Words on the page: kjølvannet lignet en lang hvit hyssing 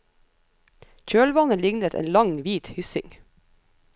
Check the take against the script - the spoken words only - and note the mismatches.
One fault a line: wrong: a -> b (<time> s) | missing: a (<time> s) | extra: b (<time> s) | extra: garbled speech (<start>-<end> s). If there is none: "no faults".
no faults